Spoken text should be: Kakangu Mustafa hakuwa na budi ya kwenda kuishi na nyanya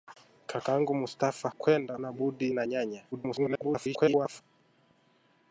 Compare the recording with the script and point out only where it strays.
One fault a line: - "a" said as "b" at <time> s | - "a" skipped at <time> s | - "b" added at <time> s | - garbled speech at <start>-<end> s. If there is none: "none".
- "hakuwa" said as "kwenda" at 1.5 s
- "ya kwenda kuishi" skipped at 2.5 s
- garbled speech at 3.1-4.4 s